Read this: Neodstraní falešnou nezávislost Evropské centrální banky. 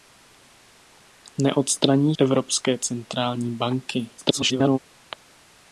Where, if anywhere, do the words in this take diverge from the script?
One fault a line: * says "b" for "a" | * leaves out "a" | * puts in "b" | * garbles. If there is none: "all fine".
* leaves out "falešnou nezávislost"
* garbles